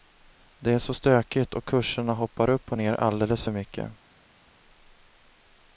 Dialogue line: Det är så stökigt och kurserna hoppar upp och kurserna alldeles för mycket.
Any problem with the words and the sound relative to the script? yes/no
yes